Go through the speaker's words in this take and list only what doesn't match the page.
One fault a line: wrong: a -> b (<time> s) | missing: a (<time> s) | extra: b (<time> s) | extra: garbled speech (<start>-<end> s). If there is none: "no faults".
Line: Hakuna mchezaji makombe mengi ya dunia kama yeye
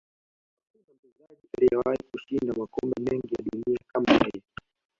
extra: aliyewahi kushinda (1.6 s)